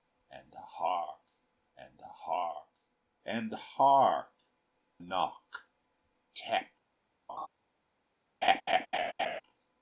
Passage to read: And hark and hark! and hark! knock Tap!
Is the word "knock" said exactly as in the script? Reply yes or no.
yes